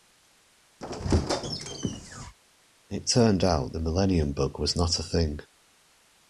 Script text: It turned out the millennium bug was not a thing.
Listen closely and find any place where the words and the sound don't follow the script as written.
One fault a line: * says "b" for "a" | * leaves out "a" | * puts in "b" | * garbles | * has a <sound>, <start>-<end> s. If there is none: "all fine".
* has a squeak, 0.8-2.3 s